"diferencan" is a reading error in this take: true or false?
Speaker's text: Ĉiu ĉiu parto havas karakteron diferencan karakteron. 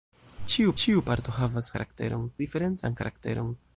false